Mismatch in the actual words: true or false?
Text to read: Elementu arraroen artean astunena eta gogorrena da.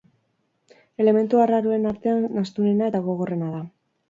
false